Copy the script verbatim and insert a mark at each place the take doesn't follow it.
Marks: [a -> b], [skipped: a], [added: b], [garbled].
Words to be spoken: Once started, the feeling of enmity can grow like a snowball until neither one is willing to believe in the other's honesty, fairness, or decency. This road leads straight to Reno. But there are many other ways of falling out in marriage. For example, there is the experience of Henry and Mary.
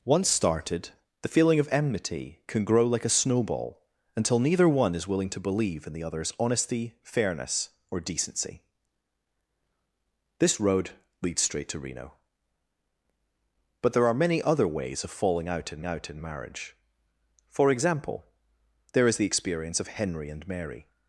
Once started, the feeling of enmity can grow like a snowball until neither one is willing to believe in the other's honesty, fairness, or decency. This road leads straight to Reno. But there are many other ways of falling out in [added: out in] marriage. For example, there is the experience of Henry and Mary.